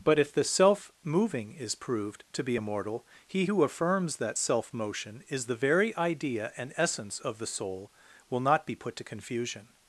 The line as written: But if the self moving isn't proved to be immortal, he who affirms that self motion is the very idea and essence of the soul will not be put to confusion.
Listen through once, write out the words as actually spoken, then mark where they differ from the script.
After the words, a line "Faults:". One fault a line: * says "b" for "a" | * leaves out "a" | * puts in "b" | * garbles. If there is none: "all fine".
But if the self moving is proved to be immortal, he who affirms that self motion is the very idea and essence of the soul will not be put to confusion.
Faults:
* says "is" for "isn't"